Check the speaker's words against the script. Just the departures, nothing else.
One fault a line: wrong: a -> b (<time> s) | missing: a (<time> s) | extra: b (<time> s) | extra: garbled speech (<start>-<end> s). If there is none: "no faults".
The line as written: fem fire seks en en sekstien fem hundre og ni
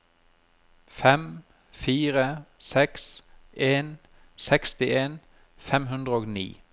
missing: en (4.0 s)